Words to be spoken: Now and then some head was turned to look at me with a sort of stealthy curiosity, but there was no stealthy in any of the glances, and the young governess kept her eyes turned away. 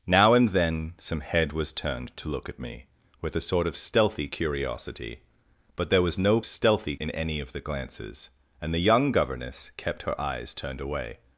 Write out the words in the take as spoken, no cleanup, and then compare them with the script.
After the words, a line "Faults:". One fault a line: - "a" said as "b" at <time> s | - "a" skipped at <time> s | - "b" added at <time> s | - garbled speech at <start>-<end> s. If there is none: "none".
Now and then some head was turned to look at me with a sort of stealthy curiosity, but there was no stealthy in any of the glances, and the young governess kept her eyes turned away.
Faults:
none